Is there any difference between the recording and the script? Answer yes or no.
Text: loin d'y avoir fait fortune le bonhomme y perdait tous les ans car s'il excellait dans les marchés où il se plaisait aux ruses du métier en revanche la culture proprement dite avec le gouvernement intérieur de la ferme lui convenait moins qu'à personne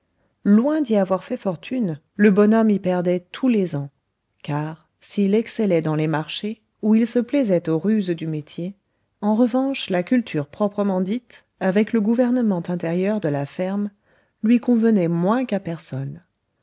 no